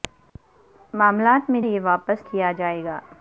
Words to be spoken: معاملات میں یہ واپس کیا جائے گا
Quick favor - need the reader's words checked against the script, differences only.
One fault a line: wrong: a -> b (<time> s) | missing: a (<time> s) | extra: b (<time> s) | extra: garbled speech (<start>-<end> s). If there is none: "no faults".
no faults